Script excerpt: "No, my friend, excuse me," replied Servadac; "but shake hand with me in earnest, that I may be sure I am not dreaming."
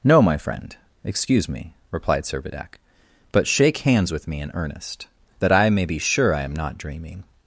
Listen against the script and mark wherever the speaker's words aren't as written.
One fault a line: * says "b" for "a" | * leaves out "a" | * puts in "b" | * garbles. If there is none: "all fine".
* says "hands" for "hand"